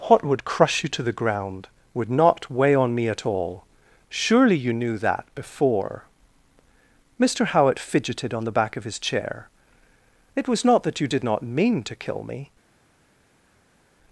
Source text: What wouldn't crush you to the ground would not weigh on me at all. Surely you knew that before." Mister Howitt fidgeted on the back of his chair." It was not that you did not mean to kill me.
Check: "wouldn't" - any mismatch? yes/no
yes